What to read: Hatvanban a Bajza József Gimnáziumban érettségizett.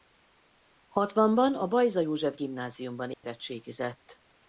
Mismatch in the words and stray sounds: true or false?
true